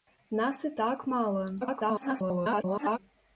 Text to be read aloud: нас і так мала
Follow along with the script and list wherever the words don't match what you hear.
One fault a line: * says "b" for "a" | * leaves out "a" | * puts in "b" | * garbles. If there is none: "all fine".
* garbles